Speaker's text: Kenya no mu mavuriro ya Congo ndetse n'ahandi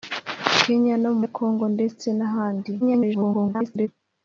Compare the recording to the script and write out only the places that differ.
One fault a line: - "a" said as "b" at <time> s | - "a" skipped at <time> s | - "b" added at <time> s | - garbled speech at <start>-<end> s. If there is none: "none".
- "mavuriro" skipped at 1.2 s
- garbled speech at 2.8-3.9 s